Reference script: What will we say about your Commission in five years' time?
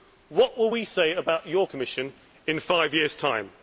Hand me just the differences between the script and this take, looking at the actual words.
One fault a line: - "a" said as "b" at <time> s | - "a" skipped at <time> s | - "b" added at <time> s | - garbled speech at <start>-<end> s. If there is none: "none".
none